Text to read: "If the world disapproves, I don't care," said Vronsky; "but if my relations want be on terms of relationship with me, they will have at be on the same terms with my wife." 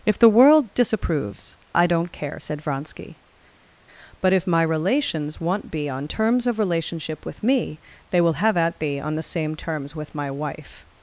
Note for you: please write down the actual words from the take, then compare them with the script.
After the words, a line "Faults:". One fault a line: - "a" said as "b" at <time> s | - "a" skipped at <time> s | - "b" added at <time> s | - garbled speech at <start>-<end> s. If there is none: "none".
"If the world disapproves, I don't care," said Vronsky; "but if my relations want be on terms of relationship with me, they will have at be on the same terms with my wife."
Faults:
none